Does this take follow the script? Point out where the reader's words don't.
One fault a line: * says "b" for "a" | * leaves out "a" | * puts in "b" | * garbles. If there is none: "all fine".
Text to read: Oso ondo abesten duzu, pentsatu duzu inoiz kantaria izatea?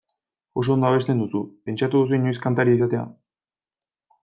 all fine